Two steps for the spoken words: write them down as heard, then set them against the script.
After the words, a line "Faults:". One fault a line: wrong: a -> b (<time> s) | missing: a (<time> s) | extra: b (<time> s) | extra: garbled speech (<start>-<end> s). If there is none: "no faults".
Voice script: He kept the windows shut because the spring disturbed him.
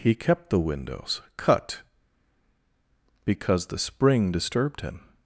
He kept the windows cut because the spring disturbed him.
Faults:
wrong: shut -> cut (1.4 s)